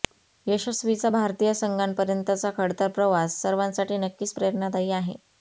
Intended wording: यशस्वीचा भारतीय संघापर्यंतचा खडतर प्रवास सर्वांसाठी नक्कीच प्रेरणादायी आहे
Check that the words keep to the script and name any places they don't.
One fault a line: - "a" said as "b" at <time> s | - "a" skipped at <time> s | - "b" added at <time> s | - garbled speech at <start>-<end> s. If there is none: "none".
none